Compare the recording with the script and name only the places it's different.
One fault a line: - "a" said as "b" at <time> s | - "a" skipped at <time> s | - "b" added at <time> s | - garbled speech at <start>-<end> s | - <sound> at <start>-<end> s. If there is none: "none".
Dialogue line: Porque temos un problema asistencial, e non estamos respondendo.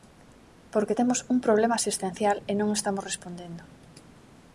none